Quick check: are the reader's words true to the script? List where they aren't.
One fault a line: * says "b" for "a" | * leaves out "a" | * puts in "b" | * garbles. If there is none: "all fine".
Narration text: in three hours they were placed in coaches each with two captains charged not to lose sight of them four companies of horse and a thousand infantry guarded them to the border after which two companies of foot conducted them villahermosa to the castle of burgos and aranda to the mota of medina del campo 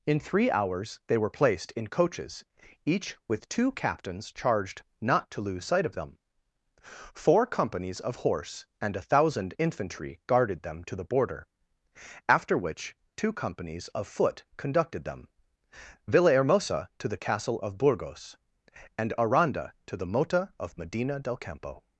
all fine